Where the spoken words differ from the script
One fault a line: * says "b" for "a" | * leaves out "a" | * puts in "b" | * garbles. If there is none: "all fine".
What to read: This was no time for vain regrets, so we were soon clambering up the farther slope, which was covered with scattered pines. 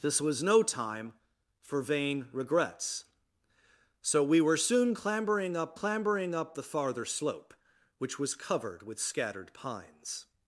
* puts in "clambering up"